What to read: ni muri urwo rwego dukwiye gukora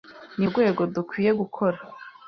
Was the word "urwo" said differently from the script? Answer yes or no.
yes